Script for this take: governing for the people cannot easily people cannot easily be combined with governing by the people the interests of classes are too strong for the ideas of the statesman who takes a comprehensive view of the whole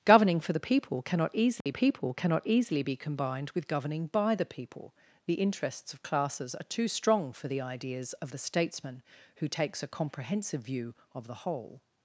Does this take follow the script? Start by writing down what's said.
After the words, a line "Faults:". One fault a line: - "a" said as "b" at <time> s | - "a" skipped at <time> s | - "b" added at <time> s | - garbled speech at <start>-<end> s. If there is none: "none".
governing for the people cannot easily people cannot easily be combined with governing by the people the interests of classes are too strong for the ideas of the statesman who takes a comprehensive view of the whole
Faults:
none